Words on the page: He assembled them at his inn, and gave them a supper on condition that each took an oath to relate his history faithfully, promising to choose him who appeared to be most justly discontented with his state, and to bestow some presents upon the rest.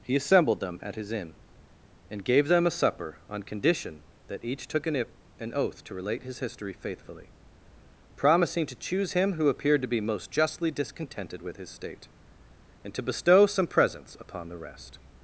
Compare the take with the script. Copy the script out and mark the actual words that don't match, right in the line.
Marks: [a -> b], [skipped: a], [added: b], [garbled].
He assembled them at his inn, and gave them a supper on condition that each took an [added: an] oath to relate his history faithfully, promising to choose him who appeared to be most justly discontented with his state, and to bestow some presents upon the rest.